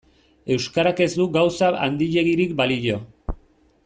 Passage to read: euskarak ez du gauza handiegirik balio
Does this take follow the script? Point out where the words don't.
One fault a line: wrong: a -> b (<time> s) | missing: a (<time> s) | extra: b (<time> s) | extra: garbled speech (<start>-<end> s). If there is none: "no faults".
no faults